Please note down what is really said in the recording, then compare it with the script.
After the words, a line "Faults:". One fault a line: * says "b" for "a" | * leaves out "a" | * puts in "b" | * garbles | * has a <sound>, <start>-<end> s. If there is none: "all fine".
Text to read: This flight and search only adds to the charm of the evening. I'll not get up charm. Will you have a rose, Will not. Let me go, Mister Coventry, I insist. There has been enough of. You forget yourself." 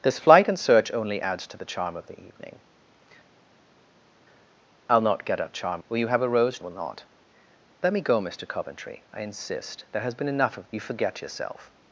This flight and search only adds to the charm of the evening. I'll not get up charm. Will you have a rose, Will not. Let me go, Mister Coventry, I insist. There has been enough of. You forget yourself."
Faults:
all fine